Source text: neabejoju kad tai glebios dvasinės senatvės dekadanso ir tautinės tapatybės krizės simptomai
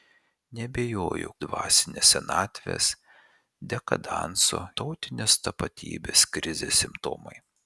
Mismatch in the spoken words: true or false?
true